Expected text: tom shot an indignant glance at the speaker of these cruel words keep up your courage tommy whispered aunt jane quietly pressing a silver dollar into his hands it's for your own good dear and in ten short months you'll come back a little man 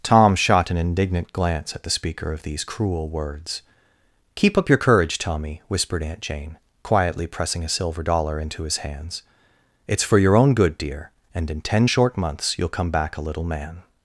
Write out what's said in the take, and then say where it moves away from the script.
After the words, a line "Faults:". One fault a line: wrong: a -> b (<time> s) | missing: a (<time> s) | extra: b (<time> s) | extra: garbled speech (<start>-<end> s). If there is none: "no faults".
tom shot an indignant glance at the speaker of these cruel words keep up your courage tommy whispered aunt jane quietly pressing a silver dollar into his hands it's for your own good dear and in ten short months you'll come back a little man
Faults:
no faults